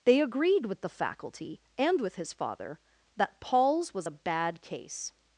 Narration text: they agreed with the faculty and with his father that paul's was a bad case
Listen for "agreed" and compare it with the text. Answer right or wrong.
right